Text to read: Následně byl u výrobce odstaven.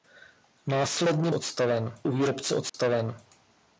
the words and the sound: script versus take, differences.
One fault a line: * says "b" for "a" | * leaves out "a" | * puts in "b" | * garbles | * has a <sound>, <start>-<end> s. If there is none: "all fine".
* says "odstaven" for "byl"
* has a dropout, 2.7-2.7 s